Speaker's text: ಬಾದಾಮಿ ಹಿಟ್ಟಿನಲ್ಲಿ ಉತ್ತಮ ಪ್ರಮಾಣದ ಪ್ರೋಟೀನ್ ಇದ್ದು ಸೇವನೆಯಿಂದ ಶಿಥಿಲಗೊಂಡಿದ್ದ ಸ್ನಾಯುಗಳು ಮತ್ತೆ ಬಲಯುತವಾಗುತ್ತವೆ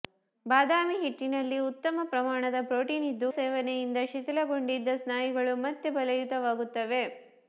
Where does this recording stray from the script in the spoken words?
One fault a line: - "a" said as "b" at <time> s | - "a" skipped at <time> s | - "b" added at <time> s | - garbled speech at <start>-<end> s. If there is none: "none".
none